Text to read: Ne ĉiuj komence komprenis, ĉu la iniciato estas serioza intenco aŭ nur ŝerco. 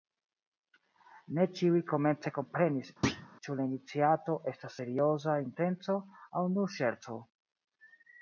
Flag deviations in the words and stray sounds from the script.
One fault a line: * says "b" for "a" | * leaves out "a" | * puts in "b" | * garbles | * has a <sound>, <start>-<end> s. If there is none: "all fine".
* has a thud, 3.0-3.3 s